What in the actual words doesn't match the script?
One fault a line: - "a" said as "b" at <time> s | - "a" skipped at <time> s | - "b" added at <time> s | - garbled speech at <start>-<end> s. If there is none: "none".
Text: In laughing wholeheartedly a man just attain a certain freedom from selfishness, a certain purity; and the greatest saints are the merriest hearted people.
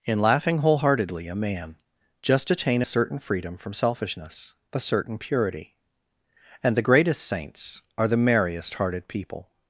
none